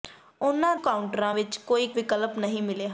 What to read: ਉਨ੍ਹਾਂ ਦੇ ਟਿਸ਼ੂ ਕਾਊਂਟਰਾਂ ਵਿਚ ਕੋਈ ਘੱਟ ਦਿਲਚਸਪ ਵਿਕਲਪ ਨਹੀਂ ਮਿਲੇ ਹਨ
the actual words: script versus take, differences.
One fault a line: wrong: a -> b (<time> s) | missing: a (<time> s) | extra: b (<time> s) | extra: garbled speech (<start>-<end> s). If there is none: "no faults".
missing: ਦੇ ਟਿਸ਼ੂ (0.8 s)
missing: ਘੱਟ ਦਿਲਚਸਪ (1.9 s)